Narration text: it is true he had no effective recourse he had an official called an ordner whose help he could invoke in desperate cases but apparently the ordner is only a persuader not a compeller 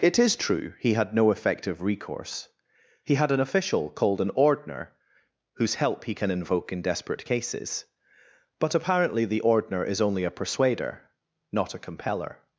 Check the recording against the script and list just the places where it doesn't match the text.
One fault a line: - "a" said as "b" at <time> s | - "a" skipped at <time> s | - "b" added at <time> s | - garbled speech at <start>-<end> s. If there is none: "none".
- "could" said as "can" at 6.2 s